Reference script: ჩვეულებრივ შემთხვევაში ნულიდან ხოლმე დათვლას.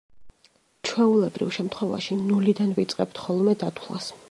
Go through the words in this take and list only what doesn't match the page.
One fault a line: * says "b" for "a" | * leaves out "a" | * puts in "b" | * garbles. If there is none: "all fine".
* puts in "ვიწყებთ"